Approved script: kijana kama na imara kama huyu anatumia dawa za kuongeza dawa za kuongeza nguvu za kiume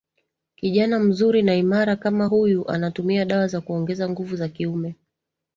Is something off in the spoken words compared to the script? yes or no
yes